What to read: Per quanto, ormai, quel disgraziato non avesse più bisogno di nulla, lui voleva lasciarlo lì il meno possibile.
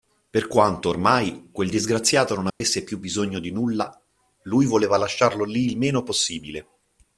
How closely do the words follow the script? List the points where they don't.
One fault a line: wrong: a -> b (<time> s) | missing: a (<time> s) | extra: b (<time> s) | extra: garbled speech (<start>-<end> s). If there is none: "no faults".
no faults